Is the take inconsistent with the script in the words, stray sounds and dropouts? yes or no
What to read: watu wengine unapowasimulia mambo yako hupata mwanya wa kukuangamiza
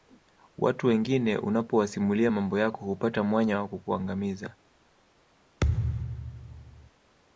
yes